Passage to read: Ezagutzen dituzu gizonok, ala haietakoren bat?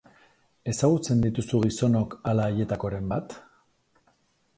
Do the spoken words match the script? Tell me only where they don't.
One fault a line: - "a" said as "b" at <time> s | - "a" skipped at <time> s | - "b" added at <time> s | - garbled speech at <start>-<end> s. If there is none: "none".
none